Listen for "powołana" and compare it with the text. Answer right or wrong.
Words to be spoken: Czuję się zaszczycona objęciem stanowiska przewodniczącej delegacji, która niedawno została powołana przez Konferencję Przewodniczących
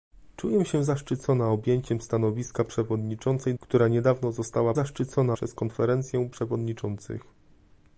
wrong